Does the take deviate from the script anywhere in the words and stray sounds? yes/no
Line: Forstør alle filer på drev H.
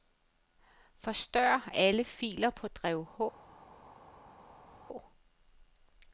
no